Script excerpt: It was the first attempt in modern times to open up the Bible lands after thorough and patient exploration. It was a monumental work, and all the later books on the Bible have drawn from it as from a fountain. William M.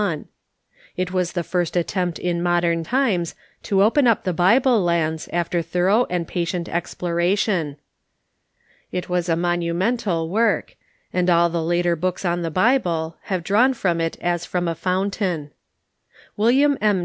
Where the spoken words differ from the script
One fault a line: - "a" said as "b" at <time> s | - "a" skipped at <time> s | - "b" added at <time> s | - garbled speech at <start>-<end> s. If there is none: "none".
none